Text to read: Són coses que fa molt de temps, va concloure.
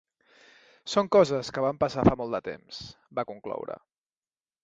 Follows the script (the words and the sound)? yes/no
no